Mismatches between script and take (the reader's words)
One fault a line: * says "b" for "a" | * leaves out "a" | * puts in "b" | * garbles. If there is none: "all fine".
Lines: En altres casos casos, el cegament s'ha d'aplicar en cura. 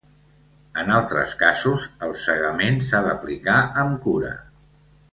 * leaves out "casos"
* says "amb" for "en"